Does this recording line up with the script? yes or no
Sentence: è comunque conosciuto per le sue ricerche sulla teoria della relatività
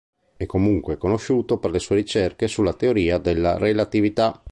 yes